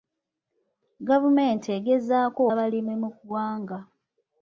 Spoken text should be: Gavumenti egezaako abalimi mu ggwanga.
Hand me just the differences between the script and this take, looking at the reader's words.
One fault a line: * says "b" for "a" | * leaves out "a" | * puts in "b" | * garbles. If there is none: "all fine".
all fine